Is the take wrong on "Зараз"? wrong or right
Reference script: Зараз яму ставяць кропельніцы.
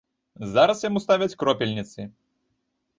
right